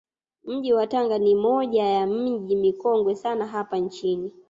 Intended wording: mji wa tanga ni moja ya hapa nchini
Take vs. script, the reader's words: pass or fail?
fail